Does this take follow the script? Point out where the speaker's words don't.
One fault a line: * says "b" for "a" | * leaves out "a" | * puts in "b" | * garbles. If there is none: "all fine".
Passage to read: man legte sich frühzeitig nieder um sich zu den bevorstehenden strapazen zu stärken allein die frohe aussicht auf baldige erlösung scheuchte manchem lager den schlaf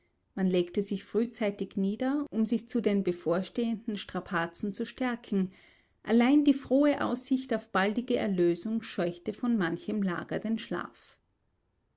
* puts in "von"